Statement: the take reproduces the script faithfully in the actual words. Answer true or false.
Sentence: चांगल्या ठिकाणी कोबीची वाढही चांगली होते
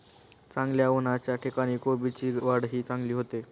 false